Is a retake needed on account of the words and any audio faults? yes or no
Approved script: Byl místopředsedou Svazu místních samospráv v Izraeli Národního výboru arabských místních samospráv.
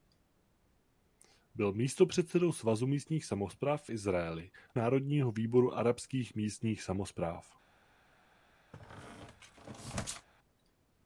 yes